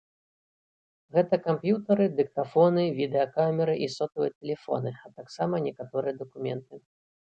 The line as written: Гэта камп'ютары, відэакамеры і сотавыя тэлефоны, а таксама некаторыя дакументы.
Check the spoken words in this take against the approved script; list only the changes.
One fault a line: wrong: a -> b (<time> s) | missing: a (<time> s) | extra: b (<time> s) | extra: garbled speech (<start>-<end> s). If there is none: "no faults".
extra: дыктафоны (2.2 s)